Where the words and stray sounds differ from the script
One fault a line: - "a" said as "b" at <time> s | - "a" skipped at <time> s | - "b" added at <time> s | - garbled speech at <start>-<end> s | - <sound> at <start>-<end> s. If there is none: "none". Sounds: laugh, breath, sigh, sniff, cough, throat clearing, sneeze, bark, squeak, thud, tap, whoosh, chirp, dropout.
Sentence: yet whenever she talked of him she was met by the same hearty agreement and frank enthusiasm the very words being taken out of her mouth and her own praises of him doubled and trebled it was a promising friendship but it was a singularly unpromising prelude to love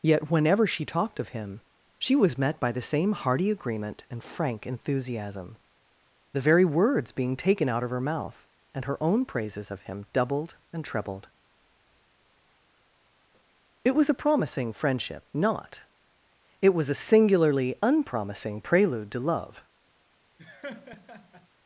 - "but" said as "not" at 15.3 s
- laugh at 20.4-21.5 s